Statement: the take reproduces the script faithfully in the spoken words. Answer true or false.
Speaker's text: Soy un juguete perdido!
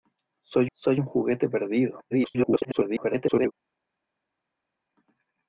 false